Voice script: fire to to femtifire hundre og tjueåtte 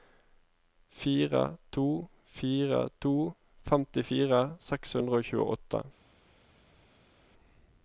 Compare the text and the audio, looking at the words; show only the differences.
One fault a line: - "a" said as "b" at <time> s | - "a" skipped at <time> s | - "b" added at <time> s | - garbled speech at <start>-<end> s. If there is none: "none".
- "fire" added at 2.4 s
- "seks" added at 4.7 s